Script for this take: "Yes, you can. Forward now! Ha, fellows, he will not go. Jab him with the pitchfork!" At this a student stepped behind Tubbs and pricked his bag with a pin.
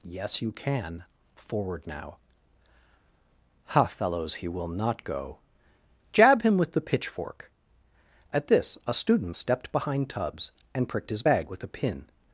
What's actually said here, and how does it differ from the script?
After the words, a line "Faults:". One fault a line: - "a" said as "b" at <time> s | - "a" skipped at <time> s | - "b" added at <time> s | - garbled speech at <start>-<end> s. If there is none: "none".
"Yes, you can. Forward now! Ha, fellows, he will not go. Jab him with the pitchfork!" At this a student stepped behind Tubbs and pricked his bag with a pin.
Faults:
none